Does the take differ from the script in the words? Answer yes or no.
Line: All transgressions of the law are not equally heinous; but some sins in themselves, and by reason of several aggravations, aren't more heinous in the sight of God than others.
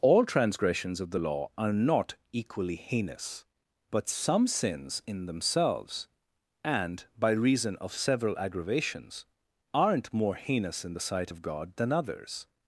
no